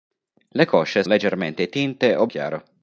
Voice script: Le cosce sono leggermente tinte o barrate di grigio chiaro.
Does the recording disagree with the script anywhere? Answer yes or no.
yes